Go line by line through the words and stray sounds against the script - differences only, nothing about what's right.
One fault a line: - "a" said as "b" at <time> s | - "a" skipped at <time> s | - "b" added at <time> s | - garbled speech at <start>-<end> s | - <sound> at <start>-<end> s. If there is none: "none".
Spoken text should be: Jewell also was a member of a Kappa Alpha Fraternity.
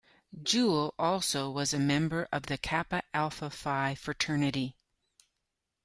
- "a" said as "the" at 2.4 s
- "Phi" added at 3.5 s